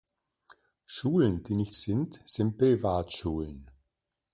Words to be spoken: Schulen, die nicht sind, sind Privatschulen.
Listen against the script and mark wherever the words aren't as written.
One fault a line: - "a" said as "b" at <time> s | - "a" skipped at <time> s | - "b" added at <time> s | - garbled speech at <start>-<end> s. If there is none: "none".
none